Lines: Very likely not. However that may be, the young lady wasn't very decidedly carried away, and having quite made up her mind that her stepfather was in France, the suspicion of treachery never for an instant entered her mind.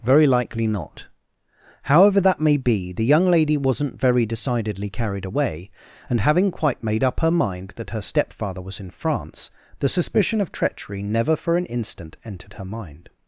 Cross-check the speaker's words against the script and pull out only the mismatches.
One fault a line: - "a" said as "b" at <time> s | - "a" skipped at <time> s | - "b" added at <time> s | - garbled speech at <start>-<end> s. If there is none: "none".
none